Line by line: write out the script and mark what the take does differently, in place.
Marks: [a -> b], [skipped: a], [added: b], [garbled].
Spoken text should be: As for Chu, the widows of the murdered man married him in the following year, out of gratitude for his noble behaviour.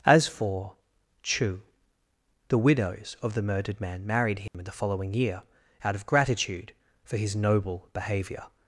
As for Chu, the widows of the murdered man married him in the following year, out of gratitude for his noble behaviour.